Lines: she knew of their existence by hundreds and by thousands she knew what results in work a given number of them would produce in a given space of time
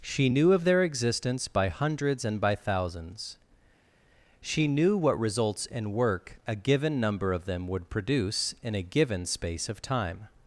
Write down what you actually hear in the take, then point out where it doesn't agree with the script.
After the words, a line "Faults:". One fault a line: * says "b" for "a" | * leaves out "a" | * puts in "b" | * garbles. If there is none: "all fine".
she knew of their existence by hundreds and by thousands she knew what results in work a given number of them would produce in a given space of time
Faults:
all fine